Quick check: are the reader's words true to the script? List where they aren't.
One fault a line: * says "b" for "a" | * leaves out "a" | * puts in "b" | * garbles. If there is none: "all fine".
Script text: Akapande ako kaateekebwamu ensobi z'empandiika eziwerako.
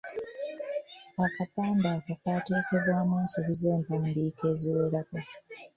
all fine